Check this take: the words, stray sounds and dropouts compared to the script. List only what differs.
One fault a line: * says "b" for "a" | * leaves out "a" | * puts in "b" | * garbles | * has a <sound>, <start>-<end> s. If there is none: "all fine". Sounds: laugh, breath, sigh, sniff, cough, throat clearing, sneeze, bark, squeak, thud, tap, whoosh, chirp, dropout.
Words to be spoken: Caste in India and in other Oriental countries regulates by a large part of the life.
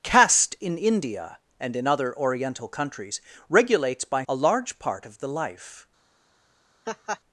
* has a laugh, 6.9-7.2 s